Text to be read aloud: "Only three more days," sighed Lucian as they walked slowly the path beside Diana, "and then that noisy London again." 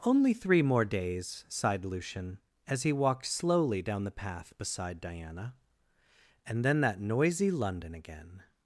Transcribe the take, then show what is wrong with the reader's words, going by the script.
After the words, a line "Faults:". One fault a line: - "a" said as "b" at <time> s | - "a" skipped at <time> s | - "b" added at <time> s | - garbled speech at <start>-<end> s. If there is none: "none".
"Only three more days," sighed Lucian as he walked slowly down the path beside Diana, "and then that noisy London again."
Faults:
- "they" said as "he" at 2.8 s
- "down" added at 3.8 s